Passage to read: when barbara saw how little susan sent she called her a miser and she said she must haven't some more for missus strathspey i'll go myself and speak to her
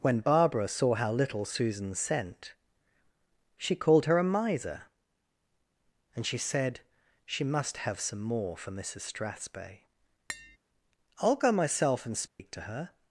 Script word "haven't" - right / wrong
wrong